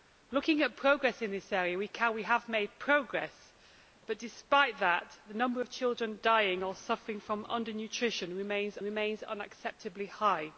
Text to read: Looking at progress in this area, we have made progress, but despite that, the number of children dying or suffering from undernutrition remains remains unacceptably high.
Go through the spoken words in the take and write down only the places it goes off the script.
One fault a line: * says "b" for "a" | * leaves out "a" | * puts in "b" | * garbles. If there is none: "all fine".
all fine